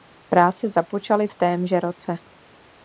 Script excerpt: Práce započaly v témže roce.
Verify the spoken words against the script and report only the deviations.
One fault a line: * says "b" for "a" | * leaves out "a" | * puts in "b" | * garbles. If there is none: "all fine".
all fine